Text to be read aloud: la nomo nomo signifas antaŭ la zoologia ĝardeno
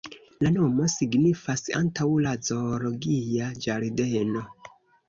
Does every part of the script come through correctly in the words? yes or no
no